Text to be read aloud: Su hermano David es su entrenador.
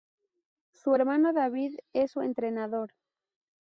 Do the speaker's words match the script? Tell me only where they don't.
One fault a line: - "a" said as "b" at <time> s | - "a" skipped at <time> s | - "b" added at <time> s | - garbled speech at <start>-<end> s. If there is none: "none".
none